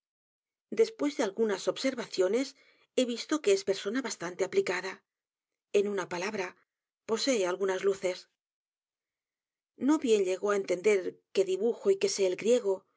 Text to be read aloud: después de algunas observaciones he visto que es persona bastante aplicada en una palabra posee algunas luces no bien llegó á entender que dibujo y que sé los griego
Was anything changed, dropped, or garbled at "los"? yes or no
yes